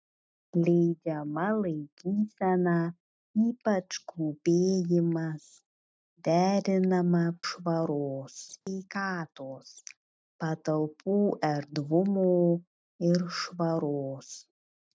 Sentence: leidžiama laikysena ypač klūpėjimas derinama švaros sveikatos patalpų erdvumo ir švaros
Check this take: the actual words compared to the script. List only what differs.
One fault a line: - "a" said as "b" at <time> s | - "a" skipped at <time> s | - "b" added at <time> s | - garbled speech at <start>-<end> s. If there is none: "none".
none